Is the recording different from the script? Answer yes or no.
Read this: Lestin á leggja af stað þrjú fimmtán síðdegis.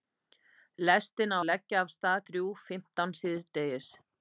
no